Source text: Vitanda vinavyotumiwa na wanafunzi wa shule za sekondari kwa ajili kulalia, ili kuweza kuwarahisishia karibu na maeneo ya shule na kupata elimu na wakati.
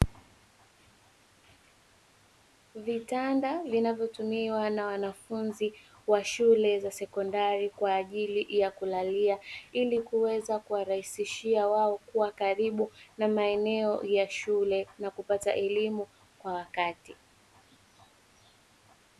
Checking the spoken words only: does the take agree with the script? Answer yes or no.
no